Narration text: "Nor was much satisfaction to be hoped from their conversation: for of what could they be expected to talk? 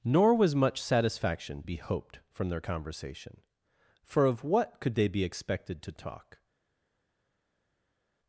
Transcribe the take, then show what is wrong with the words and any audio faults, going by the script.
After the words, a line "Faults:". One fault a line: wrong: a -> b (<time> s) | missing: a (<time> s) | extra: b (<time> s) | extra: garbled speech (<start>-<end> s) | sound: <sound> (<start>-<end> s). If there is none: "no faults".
"Nor was much satisfaction be hoped from their conversation: for of what could they be expected to talk?
Faults:
missing: to (1.6 s)